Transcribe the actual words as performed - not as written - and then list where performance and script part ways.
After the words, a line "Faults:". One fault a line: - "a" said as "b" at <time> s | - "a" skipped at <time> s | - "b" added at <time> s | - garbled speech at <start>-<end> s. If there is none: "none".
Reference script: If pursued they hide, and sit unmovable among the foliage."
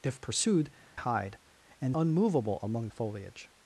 If pursued hide, and unmovable among the foliage."
Faults:
- "they" skipped at 0.7 s
- "sit" skipped at 2.0 s